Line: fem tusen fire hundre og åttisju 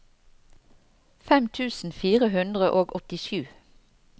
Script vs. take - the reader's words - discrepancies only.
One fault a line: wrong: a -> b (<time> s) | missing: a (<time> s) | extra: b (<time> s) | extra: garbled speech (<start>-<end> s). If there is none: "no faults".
no faults